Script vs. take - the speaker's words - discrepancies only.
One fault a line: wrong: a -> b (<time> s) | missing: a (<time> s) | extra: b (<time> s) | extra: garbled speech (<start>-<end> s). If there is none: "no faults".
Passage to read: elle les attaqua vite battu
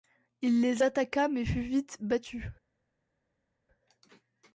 wrong: elle -> il (0.4 s)
extra: mais fut (1.3 s)